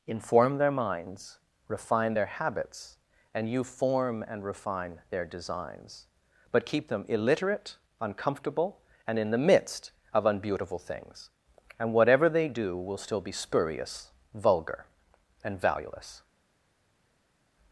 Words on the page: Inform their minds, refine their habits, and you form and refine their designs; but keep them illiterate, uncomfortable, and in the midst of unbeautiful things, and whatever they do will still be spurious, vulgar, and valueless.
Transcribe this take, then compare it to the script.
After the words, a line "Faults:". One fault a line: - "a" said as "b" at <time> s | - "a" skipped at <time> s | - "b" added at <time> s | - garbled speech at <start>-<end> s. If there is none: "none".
Inform their minds, refine their habits, and you form and refine their designs; but keep them illiterate, uncomfortable, and in the midst of unbeautiful things, and whatever they do will still be spurious, vulgar, and valueless.
Faults:
none